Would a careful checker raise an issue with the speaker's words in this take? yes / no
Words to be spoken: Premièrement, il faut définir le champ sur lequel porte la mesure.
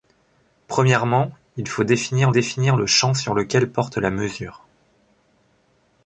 yes